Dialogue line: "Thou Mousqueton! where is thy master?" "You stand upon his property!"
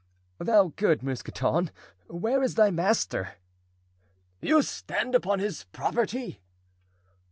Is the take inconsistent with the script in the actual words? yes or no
yes